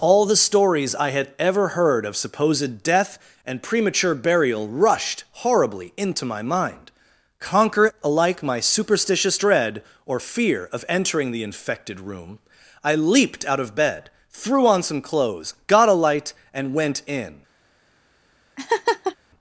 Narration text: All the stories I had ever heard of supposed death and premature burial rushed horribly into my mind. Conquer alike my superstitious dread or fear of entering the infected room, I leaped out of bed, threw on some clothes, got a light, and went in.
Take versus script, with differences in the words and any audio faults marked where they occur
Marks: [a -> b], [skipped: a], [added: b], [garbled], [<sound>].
All the stories I had ever heard of supposed death and premature burial rushed horribly into my mind. Conquer alike my superstitious dread or fear of entering the infected room, I leaped out of bed, threw on some clothes, got a light, and went in. [laugh]